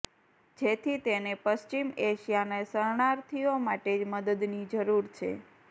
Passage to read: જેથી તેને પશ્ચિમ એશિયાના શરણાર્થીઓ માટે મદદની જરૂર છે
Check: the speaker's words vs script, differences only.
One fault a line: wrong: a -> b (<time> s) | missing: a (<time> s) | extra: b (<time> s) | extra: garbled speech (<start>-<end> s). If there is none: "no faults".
no faults